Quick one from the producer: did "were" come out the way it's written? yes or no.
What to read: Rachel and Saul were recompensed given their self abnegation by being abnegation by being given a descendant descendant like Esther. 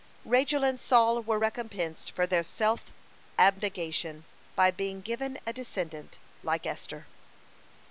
yes